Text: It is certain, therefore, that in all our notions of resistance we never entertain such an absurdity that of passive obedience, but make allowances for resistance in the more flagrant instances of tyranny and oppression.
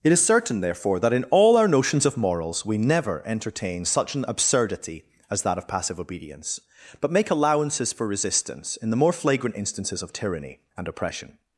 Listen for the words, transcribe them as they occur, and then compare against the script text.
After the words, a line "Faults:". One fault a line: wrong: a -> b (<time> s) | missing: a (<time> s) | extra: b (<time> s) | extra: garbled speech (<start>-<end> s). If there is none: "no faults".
It is certain, therefore, that in all our notions of morals we never entertain such an absurdity as that of passive obedience, but make allowances for resistance in the more flagrant instances of tyranny and oppression.
Faults:
wrong: resistance -> morals (2.2 s)
extra: as (5.3 s)